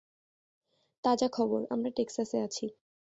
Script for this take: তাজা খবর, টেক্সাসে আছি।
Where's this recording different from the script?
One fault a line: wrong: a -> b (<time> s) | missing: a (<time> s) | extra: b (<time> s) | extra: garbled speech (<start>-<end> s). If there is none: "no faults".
extra: আমরা (1.7 s)